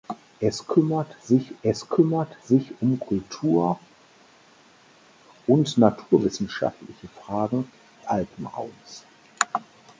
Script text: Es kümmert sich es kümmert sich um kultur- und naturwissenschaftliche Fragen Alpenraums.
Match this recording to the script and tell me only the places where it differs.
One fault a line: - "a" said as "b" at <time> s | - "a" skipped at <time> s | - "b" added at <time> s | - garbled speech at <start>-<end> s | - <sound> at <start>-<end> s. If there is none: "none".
none